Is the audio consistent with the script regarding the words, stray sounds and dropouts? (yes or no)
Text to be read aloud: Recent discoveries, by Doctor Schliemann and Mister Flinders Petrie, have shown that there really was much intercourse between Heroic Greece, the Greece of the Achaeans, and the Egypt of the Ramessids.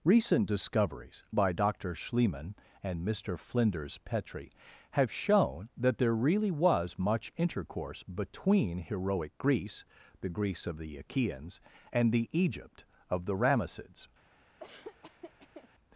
no